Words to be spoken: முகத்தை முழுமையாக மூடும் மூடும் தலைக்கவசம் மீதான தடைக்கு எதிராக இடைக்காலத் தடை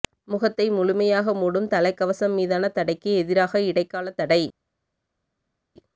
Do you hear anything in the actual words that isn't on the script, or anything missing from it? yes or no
yes